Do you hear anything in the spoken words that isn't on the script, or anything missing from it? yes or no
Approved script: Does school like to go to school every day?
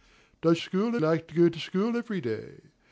no